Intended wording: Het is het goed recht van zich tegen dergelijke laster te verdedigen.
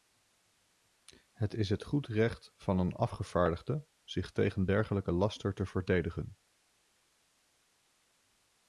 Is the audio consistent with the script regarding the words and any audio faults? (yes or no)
no